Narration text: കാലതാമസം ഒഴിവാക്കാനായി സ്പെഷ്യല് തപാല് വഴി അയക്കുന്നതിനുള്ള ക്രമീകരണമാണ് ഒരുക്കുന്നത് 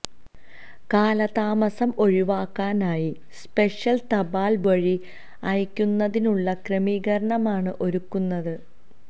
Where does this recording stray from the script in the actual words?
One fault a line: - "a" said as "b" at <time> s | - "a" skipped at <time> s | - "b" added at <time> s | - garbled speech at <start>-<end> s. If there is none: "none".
none